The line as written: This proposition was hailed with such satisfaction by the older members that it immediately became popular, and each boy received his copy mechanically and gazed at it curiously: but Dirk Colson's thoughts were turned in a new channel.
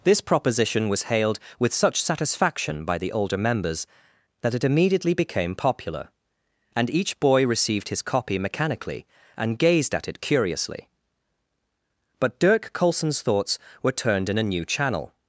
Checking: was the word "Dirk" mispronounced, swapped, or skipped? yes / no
no